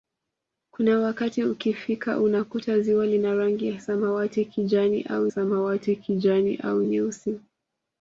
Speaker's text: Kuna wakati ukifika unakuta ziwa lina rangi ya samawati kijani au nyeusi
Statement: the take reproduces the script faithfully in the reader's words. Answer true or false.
false